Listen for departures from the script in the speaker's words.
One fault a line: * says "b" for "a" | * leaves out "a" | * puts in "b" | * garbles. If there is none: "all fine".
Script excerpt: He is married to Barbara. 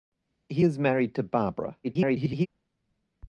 * garbles